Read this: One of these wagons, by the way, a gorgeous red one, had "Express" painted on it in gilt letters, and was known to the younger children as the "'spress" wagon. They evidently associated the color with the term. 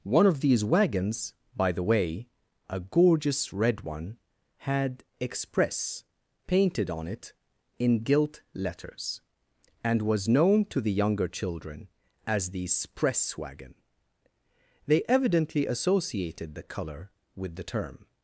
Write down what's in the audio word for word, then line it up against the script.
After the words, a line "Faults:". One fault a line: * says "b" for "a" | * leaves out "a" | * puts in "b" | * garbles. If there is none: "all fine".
One of these wagons, by the way, a gorgeous red one, had "Express" painted on it in gilt letters, and was known to the younger children as the "'spress" wagon. They evidently associated the color with the term.
Faults:
all fine